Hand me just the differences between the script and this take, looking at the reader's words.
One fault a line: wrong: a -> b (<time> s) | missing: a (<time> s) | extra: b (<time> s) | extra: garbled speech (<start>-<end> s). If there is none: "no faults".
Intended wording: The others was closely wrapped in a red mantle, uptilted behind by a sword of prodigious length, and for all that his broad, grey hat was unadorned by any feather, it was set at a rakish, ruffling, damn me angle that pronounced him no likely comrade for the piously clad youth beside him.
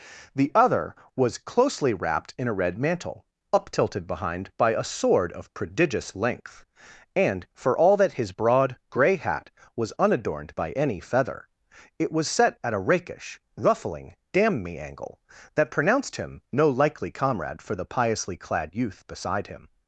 wrong: others -> other (0.6 s)